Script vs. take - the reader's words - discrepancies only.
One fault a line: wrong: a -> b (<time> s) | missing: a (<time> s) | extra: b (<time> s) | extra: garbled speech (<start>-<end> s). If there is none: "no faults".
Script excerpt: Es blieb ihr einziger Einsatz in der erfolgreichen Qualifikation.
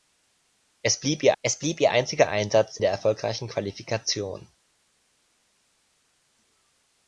extra: es blieb ihr (1.4 s)
missing: in (2.8 s)